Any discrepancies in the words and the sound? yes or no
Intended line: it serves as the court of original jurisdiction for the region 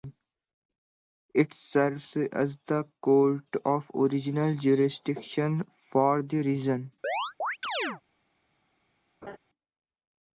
yes